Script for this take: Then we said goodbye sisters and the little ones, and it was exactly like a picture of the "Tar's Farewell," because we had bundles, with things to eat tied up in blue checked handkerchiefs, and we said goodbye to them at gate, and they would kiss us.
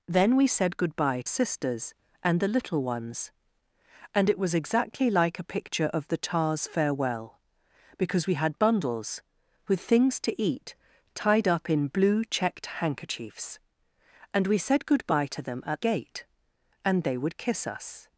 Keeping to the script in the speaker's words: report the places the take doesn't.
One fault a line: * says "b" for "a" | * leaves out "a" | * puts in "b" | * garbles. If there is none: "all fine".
all fine